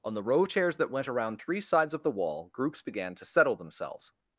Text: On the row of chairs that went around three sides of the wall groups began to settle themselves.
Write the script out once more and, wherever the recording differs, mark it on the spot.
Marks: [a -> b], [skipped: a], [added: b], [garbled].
On the row of chairs that went around three sides of the wall groups began to settle themselves.